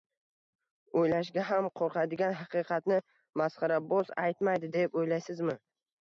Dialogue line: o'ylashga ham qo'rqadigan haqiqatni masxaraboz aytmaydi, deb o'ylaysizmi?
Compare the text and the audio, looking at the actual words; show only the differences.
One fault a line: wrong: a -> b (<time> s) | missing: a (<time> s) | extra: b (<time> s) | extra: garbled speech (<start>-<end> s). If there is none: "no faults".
no faults